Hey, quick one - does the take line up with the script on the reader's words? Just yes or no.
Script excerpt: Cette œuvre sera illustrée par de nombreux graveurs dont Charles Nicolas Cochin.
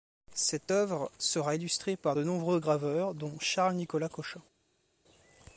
yes